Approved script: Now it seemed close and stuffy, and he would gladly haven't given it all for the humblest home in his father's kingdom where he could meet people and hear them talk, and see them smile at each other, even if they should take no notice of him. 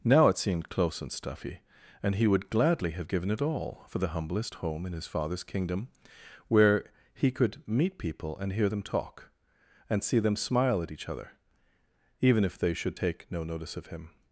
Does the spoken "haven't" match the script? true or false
false